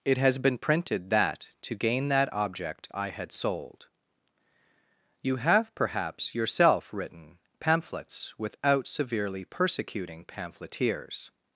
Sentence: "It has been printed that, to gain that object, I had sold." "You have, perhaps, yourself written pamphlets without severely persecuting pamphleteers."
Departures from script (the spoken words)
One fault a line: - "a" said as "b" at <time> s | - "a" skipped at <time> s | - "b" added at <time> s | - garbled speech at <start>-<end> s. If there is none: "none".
none